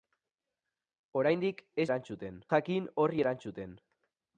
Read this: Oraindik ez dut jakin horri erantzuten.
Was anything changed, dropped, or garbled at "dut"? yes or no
yes